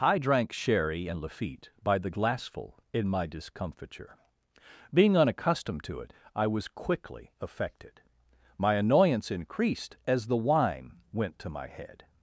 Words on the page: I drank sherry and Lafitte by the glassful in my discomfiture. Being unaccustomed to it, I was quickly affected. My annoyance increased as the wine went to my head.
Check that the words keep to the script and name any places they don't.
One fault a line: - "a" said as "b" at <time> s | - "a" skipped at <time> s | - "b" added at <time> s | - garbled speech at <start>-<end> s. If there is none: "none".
none